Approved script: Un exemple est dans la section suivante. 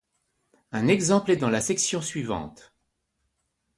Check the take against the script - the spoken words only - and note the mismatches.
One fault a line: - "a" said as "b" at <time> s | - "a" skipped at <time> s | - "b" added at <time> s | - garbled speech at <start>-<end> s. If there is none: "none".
none